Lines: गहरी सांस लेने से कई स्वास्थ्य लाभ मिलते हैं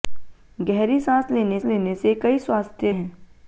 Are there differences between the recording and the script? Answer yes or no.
yes